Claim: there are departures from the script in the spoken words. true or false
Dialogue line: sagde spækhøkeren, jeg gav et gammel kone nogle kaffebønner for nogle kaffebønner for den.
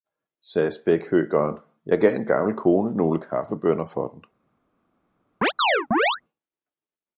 true